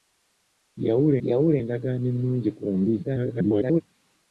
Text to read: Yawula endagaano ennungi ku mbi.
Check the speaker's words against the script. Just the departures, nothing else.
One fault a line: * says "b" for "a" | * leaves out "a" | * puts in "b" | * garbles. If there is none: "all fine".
* puts in "yawula"
* garbles